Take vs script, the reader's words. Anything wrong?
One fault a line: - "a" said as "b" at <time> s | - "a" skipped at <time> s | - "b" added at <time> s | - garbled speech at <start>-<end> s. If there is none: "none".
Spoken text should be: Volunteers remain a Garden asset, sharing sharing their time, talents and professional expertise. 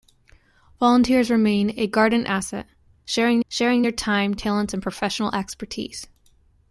none